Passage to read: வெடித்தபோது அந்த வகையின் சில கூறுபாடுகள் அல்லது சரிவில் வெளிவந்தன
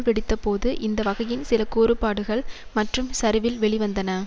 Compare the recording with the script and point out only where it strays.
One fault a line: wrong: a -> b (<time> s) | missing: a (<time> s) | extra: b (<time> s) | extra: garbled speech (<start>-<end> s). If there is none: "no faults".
wrong: அந்த -> இந்த (0.8 s)
wrong: அல்லது -> மற்றும் (2.7 s)